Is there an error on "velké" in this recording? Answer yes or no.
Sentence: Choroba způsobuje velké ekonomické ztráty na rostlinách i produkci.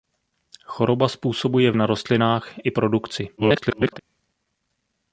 yes